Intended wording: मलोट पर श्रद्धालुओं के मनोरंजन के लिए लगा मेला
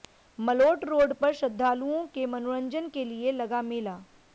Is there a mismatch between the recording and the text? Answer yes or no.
yes